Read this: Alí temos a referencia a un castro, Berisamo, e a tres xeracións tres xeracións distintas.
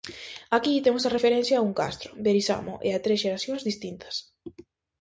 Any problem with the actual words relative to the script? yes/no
yes